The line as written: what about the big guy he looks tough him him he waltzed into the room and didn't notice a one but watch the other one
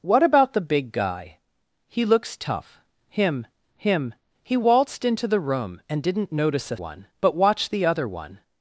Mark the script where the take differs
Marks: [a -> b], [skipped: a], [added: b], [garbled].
what about the big guy he looks tough him him he waltzed into the room and didn't notice a one but watch the other one